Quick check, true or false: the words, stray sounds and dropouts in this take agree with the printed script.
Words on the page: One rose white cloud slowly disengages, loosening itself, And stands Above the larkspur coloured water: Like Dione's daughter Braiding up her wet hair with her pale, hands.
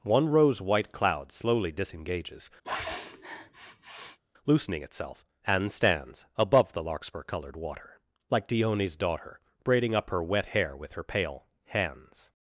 false